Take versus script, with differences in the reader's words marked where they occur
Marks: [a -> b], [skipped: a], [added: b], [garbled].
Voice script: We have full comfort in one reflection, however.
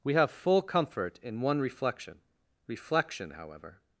We have full comfort in one reflection, [added: reflection] however.